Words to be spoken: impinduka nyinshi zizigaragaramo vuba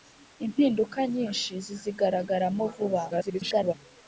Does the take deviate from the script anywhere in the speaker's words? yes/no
yes